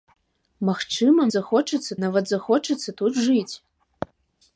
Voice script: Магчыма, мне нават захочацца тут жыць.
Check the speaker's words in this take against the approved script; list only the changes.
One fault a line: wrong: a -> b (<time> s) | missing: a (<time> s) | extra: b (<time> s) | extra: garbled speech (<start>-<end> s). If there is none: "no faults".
wrong: мне -> захочацца (1.4 s)